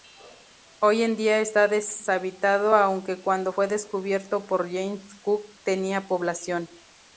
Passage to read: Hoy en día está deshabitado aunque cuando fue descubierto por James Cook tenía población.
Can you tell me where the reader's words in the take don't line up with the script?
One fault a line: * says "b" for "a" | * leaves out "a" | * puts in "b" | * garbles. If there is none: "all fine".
all fine